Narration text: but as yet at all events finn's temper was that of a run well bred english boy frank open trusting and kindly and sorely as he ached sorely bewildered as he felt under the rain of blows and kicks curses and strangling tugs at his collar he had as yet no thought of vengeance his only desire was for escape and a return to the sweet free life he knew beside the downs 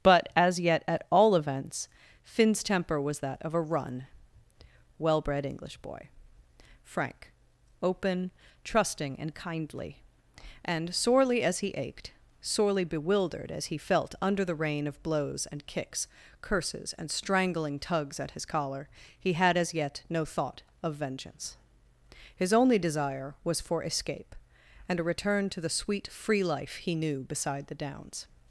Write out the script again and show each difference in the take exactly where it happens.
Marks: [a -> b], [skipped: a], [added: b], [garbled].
but as yet at all events finn's temper was that of a run well bred english boy frank open trusting and kindly and sorely as he ached sorely bewildered as he felt under the rain of blows and kicks curses and strangling tugs at his collar he had as yet no thought of vengeance his only desire was for escape and a return to the sweet free life he knew beside the downs